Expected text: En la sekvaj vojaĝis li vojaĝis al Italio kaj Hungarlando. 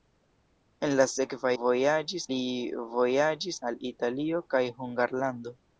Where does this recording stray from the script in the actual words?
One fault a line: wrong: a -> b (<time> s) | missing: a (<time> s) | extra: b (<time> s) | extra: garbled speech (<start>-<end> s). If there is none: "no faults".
no faults